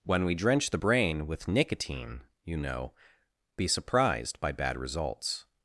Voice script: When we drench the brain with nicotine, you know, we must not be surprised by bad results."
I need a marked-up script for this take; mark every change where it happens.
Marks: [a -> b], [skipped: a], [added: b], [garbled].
When we drench the brain with nicotine, you know, [skipped: we must not] be surprised by bad results."